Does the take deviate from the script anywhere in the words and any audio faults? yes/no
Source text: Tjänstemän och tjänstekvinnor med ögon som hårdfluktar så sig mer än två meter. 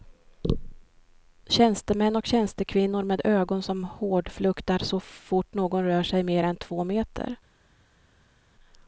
yes